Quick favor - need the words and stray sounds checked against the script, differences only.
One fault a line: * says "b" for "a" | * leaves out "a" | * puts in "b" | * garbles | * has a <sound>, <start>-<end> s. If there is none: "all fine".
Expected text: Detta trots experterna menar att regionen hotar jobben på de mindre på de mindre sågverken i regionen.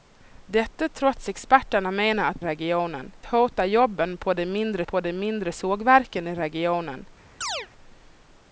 * has a chirp, 7.4-7.7 s